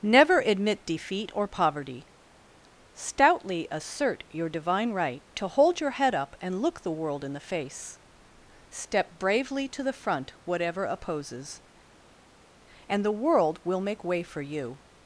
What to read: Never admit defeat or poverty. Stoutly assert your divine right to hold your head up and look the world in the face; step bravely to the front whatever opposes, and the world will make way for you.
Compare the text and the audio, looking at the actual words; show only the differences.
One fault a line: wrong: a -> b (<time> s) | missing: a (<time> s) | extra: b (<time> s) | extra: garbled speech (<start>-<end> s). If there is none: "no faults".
no faults